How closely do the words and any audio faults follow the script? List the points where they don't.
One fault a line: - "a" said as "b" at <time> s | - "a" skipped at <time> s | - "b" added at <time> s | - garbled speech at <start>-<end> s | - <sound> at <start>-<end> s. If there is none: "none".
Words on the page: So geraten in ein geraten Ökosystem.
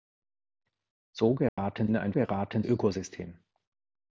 - dropout at 1.5-1.6 s